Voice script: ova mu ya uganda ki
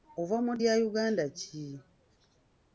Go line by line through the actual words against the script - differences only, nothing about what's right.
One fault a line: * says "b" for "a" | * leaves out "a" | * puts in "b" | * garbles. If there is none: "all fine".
all fine